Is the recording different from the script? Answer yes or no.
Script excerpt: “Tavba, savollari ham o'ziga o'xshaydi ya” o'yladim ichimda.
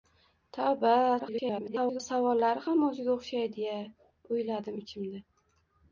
yes